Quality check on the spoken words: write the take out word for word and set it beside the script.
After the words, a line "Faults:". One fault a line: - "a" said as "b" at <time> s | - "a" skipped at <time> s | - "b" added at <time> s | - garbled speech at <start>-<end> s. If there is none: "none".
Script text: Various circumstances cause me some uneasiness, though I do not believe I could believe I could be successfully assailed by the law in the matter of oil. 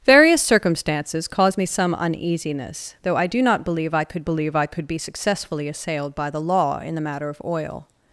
Various circumstances cause me some uneasiness, though I do not believe I could believe I could be successfully assailed by the law in the matter of oil.
Faults:
none